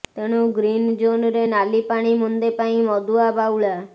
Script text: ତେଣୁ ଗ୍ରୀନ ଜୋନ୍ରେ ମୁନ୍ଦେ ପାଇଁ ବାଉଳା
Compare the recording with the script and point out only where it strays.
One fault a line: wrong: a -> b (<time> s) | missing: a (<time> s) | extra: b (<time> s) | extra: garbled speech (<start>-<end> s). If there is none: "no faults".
extra: ନାଲି ପାଣି (1.5 s)
extra: ମଦୁଆ (2.9 s)